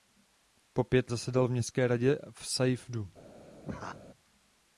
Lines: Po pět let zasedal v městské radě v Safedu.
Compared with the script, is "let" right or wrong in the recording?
wrong